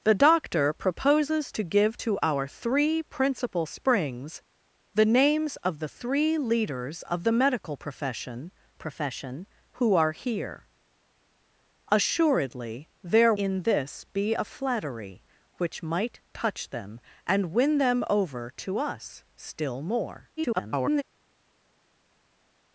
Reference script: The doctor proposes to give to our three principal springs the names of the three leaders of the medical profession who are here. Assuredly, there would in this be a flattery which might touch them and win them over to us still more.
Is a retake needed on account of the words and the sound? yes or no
yes